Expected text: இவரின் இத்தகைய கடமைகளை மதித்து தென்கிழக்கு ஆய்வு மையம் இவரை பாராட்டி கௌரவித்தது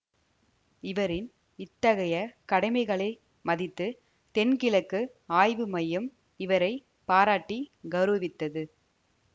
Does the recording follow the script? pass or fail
pass